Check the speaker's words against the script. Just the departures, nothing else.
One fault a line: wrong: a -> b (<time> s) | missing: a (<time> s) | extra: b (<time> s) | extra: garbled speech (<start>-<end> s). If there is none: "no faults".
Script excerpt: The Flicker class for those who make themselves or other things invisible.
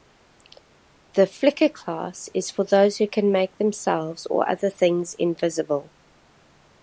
extra: is (2.3 s)
extra: can (3.1 s)